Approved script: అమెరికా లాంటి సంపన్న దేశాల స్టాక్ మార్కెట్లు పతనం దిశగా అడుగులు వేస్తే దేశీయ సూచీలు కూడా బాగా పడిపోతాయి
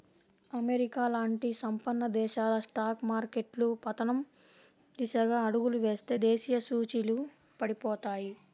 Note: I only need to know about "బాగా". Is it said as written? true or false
false